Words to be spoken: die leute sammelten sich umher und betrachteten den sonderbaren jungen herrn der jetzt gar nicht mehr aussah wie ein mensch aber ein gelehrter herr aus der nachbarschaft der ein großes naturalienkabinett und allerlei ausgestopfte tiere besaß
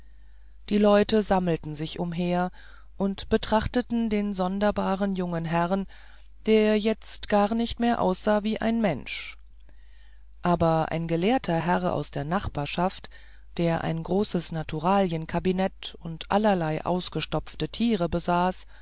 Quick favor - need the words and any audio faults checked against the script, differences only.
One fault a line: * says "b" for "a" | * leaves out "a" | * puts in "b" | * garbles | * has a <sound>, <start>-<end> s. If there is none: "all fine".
all fine